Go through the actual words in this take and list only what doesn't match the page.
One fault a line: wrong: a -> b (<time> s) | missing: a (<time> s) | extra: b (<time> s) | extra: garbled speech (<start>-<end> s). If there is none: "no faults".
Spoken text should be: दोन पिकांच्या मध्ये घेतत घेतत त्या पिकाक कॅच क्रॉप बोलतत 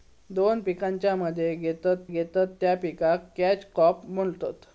no faults